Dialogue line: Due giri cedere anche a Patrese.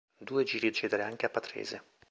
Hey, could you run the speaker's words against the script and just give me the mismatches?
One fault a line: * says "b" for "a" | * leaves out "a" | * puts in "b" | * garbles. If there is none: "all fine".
all fine